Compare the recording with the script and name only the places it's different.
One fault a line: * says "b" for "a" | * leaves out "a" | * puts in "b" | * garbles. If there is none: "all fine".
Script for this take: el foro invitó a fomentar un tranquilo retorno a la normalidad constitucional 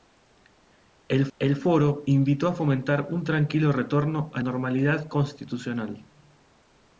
* puts in "el"
* leaves out "la"